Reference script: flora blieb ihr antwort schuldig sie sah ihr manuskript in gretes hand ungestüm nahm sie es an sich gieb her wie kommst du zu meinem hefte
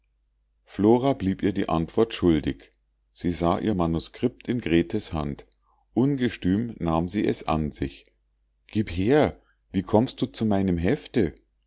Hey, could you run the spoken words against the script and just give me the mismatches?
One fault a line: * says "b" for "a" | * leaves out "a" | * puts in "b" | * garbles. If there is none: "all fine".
* puts in "die"